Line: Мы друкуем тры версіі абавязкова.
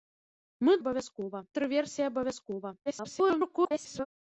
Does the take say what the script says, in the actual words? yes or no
no